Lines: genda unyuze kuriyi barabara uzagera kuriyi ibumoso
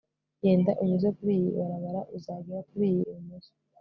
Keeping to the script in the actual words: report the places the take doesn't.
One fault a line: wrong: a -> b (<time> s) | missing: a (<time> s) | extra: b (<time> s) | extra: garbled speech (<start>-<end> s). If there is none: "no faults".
no faults